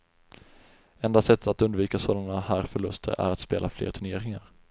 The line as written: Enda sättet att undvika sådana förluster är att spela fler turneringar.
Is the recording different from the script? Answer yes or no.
yes